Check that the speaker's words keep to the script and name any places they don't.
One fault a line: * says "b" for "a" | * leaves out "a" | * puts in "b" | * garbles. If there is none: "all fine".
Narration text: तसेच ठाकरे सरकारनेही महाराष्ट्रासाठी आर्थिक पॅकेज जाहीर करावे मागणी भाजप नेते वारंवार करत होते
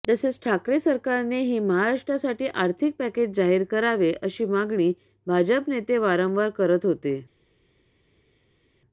* puts in "अशी"